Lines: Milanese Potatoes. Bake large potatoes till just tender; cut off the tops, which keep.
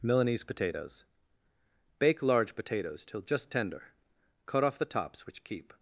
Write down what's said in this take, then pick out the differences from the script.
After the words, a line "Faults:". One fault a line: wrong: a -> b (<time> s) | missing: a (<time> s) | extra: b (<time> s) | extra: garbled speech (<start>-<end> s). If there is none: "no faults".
Milanese Potatoes. Bake large potatoes till just tender; cut off the tops, which keep.
Faults:
no faults